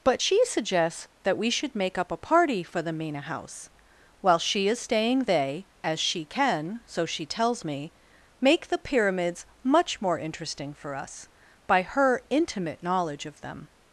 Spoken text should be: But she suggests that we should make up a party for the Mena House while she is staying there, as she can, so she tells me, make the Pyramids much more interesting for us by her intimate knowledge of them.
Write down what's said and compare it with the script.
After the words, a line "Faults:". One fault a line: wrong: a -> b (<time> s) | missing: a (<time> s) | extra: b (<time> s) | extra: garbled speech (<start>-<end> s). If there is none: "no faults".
But she suggests that we should make up a party for the Mena House while she is staying they, as she can, so she tells me, make the Pyramids much more interesting for us by her intimate knowledge of them.
Faults:
wrong: there -> they (5.2 s)